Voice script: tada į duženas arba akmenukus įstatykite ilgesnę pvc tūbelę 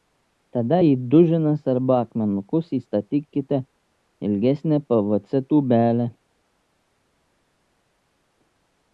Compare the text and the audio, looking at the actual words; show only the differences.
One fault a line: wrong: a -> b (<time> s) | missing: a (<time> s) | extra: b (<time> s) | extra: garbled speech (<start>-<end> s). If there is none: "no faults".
no faults